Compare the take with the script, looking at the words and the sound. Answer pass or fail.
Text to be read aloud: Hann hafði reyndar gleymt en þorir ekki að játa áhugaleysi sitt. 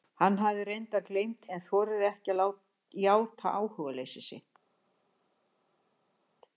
pass